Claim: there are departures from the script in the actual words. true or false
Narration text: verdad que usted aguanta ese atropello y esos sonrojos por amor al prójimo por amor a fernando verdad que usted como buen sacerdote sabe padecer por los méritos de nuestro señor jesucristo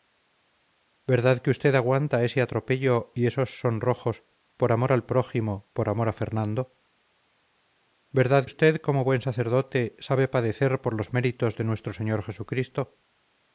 true